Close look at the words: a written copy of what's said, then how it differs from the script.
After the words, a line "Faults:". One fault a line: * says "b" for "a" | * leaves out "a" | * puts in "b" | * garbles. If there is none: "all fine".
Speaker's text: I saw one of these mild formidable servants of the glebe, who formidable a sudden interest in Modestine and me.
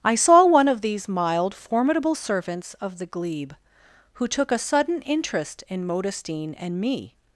I saw one of these mild formidable servants of the glebe, who took a sudden interest in Modestine and me.
Faults:
* says "took" for "formidable"